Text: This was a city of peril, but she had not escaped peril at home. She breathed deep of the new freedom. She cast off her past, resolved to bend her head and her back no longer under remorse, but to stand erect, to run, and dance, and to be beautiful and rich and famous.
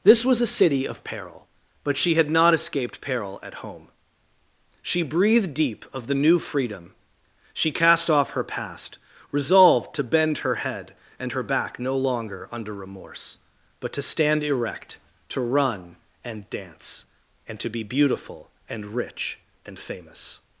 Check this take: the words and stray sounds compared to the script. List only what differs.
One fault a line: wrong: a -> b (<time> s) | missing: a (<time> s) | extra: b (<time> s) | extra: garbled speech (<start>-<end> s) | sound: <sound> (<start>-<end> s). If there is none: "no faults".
no faults